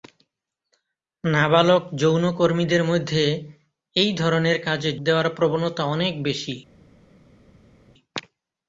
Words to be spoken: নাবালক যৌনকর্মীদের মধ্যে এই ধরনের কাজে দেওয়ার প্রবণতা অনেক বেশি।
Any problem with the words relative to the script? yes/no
no